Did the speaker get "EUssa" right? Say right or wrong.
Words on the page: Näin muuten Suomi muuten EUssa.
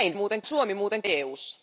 right